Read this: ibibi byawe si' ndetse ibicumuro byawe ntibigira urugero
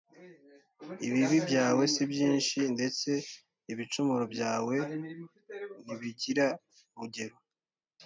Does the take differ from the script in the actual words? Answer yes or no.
yes